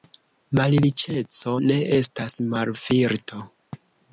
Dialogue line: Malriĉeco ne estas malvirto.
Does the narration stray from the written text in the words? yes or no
no